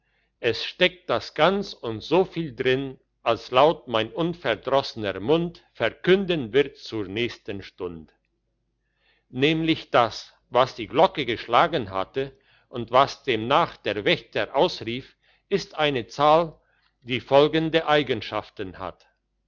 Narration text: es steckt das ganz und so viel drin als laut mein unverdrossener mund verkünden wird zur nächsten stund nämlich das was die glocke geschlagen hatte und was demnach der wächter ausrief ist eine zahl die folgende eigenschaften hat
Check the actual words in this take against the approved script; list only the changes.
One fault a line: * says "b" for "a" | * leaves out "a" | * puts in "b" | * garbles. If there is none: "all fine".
all fine